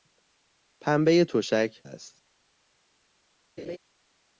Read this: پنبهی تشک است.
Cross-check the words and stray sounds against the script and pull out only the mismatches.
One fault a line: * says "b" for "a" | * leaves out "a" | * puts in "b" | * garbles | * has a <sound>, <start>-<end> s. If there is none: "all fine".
* has a laugh, 3.6-3.8 s